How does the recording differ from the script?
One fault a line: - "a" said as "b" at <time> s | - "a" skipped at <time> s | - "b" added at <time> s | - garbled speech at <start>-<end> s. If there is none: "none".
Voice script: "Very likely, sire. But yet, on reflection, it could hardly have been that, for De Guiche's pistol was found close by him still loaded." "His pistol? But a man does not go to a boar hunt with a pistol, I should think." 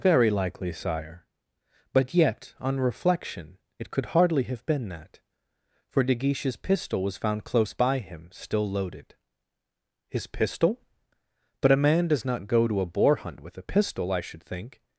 none